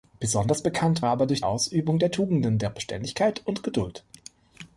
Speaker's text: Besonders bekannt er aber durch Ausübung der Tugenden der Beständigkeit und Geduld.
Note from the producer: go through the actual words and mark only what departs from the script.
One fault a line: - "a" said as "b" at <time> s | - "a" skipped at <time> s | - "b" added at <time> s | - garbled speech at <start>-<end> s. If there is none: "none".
none